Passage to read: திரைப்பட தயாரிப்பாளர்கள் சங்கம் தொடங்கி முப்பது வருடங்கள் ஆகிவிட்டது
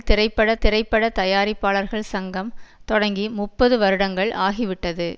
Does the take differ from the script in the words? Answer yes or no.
yes